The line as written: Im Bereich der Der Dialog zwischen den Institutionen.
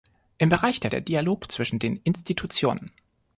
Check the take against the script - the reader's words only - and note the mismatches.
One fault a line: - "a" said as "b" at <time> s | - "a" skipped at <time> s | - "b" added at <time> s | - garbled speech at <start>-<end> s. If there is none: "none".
none